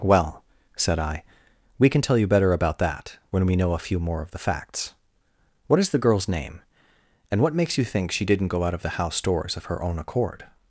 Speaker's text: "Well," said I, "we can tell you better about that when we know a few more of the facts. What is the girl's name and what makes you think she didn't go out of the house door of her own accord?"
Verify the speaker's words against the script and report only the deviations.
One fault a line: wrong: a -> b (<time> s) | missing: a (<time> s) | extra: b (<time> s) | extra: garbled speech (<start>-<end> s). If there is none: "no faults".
wrong: door -> doors (9.2 s)